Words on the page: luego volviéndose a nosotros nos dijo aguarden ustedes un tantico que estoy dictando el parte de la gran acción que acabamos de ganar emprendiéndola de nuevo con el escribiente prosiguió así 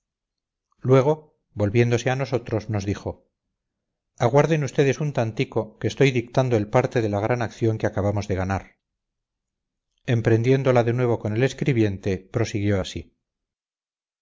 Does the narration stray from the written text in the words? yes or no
no